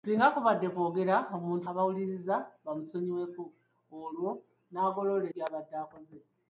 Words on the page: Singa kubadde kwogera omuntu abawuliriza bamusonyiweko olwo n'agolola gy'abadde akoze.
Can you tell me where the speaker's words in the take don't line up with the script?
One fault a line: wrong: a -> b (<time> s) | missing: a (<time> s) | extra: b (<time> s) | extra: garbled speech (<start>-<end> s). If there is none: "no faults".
no faults